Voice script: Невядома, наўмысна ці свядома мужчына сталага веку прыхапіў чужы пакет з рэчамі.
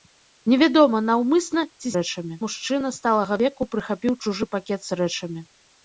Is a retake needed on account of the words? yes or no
yes